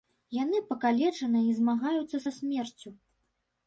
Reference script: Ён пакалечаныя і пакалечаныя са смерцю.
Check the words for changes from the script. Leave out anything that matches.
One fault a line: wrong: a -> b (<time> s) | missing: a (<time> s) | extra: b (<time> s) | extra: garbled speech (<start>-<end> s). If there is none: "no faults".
wrong: Ён -> Яны (0.4 s)
wrong: пакалечаныя -> змагаюцца (1.6 s)